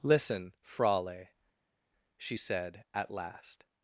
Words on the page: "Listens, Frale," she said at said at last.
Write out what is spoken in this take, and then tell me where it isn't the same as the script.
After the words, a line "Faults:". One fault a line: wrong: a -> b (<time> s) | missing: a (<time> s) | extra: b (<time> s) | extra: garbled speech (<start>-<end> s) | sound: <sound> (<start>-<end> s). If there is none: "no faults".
"Listen, Frale," she said at last.
Faults:
wrong: Listens -> Listen (0.0 s)
missing: said at (3.1 s)